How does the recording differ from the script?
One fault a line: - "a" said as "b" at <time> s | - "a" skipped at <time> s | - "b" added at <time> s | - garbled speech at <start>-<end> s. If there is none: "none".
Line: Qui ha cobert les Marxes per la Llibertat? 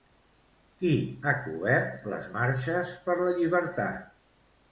none